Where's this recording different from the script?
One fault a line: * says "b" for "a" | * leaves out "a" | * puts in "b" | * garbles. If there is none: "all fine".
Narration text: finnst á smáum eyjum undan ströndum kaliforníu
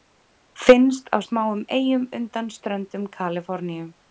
all fine